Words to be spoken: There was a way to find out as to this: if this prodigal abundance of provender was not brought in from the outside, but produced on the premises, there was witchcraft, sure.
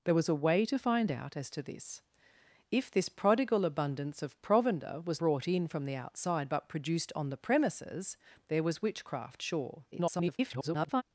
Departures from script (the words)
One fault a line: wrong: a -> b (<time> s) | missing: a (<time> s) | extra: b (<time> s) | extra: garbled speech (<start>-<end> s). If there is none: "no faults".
missing: not (5.2 s)
extra: garbled speech (9.9-11.0 s)